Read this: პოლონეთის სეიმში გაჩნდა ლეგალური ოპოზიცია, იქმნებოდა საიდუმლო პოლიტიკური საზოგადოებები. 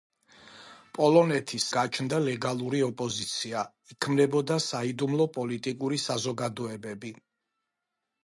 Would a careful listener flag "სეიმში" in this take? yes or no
yes